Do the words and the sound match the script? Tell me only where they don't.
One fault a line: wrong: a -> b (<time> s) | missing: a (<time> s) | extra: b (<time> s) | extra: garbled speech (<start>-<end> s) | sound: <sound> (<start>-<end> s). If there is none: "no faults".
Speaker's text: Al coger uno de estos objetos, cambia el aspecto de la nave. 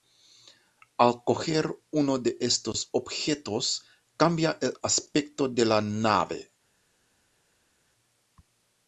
no faults